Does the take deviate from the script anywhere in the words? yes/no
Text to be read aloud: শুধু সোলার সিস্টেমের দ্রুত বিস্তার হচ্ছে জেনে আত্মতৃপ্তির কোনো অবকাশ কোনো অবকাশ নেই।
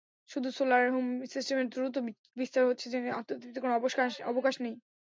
yes